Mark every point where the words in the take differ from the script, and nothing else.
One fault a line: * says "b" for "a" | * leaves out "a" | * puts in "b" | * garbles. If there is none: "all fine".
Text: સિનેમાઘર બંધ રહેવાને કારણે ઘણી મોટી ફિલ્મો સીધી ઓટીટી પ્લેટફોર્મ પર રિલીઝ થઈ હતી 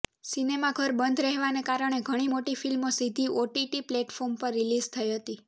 all fine